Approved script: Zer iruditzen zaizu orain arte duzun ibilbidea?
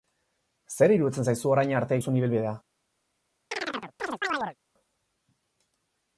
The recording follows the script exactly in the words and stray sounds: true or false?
false